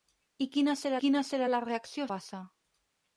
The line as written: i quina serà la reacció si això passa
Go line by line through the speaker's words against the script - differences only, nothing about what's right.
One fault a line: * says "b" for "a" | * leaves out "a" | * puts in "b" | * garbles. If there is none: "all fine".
* puts in "quina serà"
* leaves out "si això"